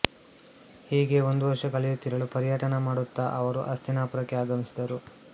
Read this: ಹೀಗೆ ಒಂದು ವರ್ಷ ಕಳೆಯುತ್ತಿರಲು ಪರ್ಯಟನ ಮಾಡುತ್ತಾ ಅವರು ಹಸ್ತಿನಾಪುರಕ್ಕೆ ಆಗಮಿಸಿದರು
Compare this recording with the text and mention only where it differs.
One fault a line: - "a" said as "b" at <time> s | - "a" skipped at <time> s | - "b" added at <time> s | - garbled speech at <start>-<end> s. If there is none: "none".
none